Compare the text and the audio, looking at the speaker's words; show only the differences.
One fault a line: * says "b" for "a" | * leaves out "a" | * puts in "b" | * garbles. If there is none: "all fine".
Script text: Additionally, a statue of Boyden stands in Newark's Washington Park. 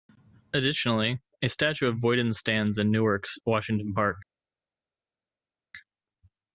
all fine